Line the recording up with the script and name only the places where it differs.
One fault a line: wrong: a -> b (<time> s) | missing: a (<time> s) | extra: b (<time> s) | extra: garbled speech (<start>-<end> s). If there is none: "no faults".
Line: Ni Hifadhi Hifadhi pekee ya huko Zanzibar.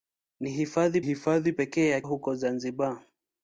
no faults